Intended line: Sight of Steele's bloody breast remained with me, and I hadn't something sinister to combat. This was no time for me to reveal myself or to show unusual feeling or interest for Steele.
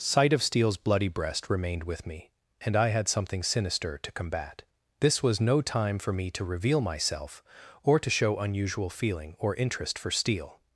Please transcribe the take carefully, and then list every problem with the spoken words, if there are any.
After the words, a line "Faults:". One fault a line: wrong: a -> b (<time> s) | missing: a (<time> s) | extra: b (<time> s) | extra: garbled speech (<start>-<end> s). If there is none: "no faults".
Sight of Steele's bloody breast remained with me, and I had something sinister to combat. This was no time for me to reveal myself or to show unusual feeling or interest for Steele.
Faults:
wrong: hadn't -> had (2.9 s)